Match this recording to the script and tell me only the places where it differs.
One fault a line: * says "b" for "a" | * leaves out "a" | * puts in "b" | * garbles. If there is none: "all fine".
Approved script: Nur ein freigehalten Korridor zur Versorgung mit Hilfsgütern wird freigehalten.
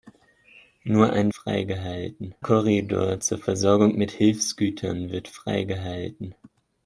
all fine